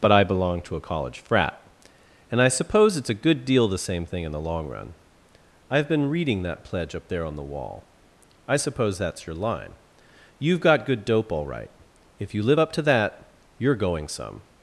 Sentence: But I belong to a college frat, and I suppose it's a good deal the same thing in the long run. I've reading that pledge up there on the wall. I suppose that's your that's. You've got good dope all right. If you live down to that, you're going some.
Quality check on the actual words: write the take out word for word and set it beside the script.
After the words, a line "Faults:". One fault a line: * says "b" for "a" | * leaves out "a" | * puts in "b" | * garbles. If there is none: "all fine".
But I belong to a college frat, and I suppose it's a good deal the same thing in the long run. I've been reading that pledge up there on the wall. I suppose that's your line. You've got good dope all right. If you live up to that, you're going some.
Faults:
* puts in "been"
* says "line" for "that's"
* says "up" for "down"